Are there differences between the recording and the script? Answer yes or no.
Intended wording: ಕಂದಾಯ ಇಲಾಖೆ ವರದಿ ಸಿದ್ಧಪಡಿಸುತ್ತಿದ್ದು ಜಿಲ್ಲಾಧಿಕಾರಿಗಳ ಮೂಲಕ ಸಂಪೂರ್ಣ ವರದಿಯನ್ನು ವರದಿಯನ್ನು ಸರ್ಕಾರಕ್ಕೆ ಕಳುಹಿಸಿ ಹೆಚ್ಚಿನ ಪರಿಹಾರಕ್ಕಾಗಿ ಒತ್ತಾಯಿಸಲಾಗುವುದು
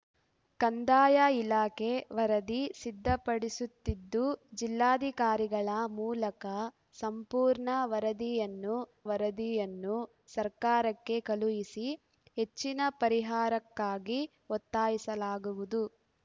no